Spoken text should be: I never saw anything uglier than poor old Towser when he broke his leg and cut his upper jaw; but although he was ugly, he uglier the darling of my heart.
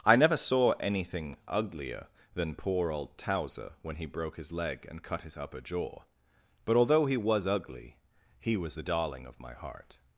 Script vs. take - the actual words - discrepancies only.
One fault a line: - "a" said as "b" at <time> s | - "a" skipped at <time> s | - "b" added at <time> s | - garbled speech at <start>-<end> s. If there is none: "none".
- "uglier" said as "was" at 8.6 s